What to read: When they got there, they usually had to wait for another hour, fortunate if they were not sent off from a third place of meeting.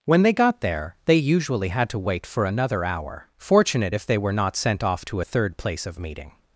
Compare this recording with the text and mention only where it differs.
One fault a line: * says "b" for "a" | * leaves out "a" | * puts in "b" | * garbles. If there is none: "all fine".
* says "to" for "from"